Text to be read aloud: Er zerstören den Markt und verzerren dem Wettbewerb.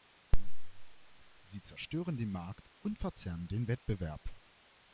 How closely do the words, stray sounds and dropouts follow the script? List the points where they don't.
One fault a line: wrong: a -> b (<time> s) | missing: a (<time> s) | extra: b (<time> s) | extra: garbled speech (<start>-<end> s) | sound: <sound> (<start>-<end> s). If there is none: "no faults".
wrong: Er -> Sie (1.4 s)
wrong: dem -> den (3.5 s)